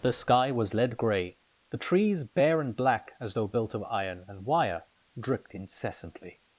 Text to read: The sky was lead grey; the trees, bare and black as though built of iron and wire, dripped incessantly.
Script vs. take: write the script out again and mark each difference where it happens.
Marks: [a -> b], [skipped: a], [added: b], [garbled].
The sky was lead grey; the trees, bare and black as though built of iron and wire, dripped incessantly.